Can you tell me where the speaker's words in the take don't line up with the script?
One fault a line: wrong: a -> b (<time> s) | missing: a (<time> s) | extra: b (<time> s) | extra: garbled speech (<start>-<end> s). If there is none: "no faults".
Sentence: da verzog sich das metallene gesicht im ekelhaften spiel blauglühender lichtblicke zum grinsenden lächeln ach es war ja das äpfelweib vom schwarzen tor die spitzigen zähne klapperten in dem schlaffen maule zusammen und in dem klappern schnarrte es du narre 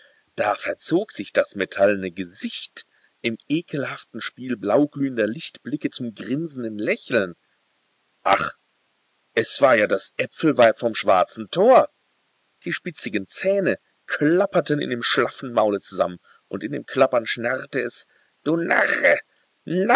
no faults